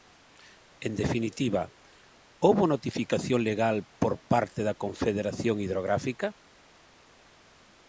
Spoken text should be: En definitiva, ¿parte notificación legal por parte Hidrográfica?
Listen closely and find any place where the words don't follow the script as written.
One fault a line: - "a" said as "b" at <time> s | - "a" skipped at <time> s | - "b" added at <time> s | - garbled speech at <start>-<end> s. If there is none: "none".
- "parte" said as "houbo" at 2.4 s
- "da Confederación" added at 4.7 s